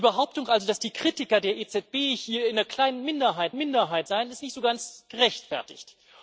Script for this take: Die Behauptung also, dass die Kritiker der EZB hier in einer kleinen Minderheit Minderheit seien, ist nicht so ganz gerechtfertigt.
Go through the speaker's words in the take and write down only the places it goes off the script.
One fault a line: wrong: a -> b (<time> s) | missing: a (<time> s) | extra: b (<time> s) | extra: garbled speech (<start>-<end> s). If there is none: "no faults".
no faults